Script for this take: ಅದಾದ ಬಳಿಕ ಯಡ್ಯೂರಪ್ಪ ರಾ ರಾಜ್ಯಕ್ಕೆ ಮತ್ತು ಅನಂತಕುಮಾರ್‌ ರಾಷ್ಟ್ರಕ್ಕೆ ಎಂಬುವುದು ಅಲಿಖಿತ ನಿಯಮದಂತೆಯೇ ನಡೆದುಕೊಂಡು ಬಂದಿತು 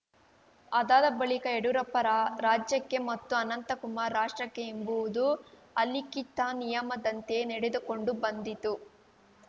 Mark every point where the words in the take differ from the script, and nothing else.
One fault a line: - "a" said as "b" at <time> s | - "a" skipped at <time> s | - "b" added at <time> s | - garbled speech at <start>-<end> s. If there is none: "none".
none